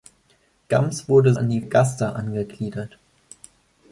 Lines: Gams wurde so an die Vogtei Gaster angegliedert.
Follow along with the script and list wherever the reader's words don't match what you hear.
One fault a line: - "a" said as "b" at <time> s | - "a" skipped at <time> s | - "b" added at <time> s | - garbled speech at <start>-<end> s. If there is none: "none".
- "so" skipped at 1.4 s
- "Vogtei" skipped at 1.6 s